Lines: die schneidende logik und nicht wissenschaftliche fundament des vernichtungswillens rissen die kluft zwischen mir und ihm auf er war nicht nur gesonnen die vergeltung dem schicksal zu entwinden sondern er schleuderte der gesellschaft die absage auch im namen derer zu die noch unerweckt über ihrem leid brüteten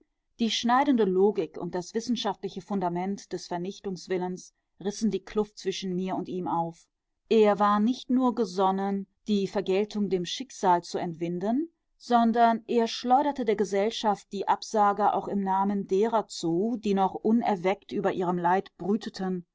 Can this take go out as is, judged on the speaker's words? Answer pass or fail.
fail